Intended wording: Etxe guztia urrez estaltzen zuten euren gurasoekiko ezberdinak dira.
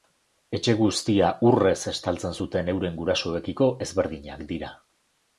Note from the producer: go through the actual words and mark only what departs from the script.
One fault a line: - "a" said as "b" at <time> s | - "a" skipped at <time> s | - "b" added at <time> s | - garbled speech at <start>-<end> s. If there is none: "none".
none